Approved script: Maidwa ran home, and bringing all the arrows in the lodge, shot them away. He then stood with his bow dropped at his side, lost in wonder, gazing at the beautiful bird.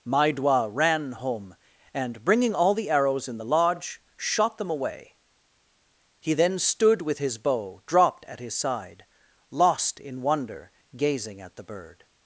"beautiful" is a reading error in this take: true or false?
true